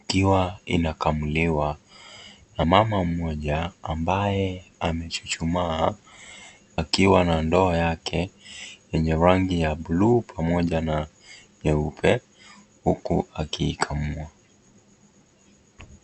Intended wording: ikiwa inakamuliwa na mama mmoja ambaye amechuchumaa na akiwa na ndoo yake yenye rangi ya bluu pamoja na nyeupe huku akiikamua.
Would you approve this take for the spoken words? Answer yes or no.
no